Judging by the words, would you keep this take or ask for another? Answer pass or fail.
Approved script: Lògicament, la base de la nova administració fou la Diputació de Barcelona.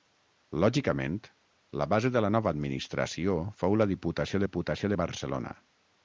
fail